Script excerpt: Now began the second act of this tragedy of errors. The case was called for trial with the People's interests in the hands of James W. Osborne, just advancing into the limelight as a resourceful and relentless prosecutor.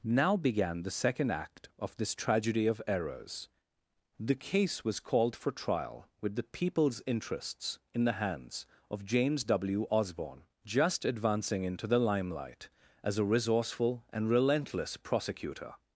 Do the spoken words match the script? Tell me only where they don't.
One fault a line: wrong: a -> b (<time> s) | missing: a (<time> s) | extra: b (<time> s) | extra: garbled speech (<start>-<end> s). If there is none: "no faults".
no faults